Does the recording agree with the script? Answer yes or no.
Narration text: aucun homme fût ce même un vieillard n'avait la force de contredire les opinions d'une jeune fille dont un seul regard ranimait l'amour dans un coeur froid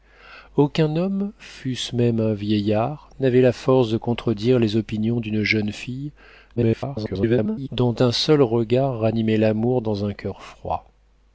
no